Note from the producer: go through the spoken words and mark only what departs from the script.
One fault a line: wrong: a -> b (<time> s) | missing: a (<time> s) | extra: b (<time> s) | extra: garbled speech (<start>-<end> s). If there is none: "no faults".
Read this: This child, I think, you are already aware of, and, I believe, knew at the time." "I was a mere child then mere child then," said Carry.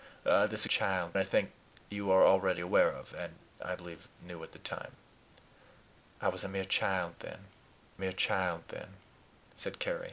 no faults